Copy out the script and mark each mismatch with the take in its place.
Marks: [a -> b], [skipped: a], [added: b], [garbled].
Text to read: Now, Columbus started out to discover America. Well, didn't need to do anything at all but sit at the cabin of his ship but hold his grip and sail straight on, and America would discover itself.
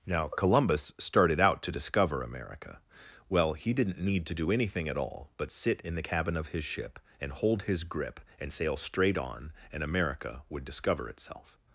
Now, Columbus started out to discover America. Well, [added: he] didn't need to do anything at all but sit [at -> in] the cabin of his ship [but -> and] hold his grip and sail straight on, and America would discover itself.